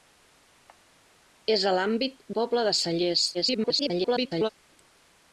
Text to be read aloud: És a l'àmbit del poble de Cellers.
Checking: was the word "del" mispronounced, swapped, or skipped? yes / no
yes